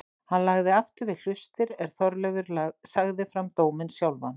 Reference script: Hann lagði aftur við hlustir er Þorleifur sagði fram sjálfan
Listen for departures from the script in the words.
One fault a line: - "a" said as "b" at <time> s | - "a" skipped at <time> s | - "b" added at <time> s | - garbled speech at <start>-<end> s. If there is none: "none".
- "dóminn" added at 3.6 s